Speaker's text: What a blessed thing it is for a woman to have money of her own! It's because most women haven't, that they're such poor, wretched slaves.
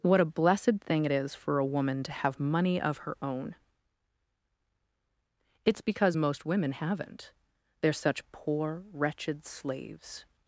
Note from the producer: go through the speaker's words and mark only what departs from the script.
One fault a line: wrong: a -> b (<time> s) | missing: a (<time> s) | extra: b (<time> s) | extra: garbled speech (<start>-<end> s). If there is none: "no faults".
missing: that (7.3 s)